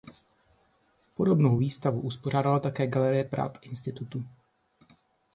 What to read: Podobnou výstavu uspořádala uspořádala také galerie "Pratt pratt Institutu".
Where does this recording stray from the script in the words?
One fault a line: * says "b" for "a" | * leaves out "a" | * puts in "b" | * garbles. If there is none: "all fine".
* leaves out "uspořádala"
* leaves out "pratt"